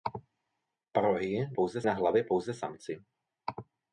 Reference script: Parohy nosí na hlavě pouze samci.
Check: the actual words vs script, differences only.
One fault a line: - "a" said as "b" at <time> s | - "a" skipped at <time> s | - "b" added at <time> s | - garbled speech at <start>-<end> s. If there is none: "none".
- "nosí" said as "pouze" at 1.5 s